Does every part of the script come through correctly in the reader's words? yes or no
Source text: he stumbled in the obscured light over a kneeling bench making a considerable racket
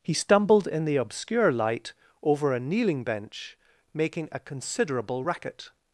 no